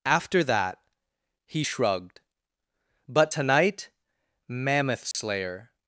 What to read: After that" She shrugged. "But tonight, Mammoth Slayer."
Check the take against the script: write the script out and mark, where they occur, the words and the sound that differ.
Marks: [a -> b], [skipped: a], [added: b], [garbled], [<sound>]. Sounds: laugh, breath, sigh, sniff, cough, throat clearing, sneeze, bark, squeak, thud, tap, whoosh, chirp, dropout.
After that" [She -> He] shrugged. "But tonight, Mammoth Slayer." [dropout]